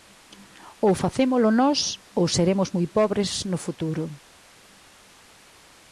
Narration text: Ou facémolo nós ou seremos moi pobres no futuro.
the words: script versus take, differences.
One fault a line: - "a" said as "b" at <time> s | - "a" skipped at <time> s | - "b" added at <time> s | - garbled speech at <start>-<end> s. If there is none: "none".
none